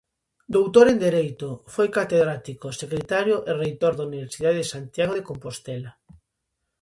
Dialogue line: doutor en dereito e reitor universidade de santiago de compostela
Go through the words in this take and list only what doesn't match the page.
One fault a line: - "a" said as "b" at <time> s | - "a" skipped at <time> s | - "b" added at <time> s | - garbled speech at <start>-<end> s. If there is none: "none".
- "foi catedrático secretario" added at 1.7 s
- "da" added at 4.0 s